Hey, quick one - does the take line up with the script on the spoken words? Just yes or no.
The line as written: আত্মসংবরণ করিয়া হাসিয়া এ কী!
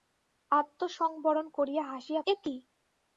yes